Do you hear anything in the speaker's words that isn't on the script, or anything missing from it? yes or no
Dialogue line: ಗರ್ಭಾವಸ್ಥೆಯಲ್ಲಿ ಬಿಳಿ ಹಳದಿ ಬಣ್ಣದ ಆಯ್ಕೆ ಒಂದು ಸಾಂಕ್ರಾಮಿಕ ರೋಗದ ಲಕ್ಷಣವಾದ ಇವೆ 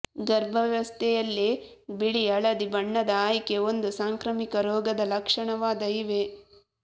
no